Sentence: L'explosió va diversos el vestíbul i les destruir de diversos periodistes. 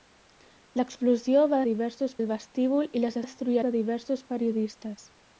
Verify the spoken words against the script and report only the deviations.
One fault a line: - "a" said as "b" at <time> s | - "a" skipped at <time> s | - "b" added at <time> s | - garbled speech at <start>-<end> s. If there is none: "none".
none